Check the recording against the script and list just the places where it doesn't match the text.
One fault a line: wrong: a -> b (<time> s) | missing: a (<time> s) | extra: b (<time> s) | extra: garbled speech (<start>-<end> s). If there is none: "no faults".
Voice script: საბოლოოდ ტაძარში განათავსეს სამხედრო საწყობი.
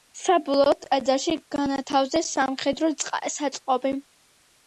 no faults